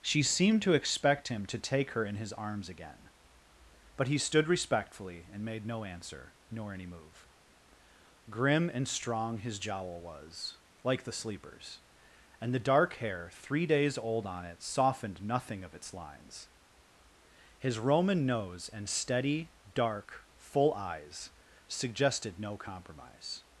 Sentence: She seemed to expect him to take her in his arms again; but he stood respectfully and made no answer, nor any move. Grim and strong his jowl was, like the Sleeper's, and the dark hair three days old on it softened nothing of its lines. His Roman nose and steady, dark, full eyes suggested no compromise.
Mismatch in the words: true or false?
false